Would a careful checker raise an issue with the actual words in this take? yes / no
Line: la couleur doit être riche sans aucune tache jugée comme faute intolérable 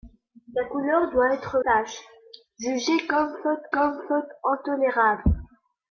yes